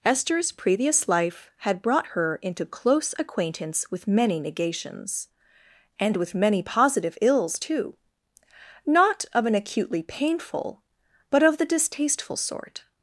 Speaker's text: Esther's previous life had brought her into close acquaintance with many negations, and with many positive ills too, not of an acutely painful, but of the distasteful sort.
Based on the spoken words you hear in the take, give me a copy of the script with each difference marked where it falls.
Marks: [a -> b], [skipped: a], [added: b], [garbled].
Esther's previous life had brought her into close acquaintance with many negations, and with many positive ills too, not of an acutely painful, but of the distasteful sort.